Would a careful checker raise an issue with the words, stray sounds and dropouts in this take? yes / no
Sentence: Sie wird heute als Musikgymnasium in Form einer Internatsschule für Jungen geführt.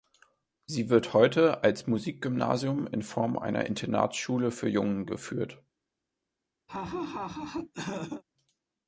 yes